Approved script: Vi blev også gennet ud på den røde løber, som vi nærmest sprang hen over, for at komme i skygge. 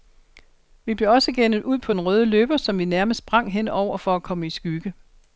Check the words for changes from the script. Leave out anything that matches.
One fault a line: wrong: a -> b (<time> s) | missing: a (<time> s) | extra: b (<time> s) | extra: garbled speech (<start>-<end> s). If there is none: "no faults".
no faults